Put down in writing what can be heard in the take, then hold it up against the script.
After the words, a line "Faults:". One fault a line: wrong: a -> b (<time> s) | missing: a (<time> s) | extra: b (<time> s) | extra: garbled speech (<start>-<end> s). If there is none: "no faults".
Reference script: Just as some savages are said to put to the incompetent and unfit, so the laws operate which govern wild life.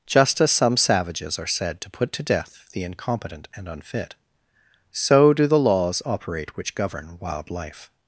Just as some savages are said to put to death the incompetent and unfit, so do the laws operate which govern wild life.
Faults:
extra: death (2.2 s)
extra: do (5.3 s)